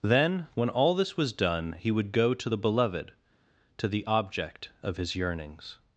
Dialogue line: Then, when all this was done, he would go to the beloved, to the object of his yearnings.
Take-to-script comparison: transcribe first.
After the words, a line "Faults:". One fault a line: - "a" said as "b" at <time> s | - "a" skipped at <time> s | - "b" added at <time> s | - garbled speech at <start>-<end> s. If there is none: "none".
Then, when all this was done, he would go to the beloved, to the object of his yearnings.
Faults:
none